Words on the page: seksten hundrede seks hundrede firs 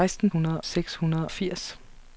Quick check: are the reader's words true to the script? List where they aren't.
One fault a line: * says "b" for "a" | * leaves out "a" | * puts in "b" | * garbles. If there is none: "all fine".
all fine